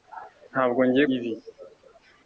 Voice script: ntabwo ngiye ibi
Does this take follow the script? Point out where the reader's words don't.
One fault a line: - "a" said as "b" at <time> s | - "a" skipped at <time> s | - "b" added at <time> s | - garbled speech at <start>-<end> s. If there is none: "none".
none